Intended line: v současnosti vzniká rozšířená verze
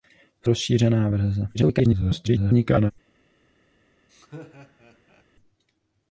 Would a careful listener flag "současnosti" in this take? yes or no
yes